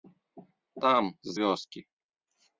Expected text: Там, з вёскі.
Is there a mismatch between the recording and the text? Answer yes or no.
no